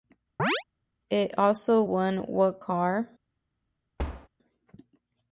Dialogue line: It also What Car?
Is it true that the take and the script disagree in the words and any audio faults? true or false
true